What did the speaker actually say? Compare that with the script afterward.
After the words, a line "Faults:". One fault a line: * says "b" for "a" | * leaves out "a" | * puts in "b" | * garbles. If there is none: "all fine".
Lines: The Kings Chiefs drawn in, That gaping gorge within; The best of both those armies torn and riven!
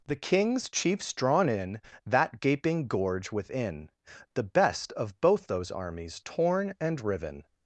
The Kings Chiefs drawn in, That gaping gorge within; The best of both those armies torn and riven!
Faults:
all fine